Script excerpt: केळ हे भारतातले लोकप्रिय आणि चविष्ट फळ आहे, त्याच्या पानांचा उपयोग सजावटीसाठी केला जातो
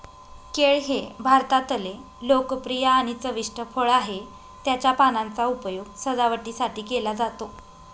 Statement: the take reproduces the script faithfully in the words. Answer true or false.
true